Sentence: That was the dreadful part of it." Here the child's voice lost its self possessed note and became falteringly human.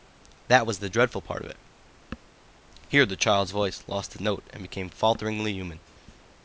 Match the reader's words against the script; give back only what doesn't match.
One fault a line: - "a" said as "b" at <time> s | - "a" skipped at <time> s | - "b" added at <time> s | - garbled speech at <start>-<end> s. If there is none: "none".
- "its self possessed" skipped at 4.2 s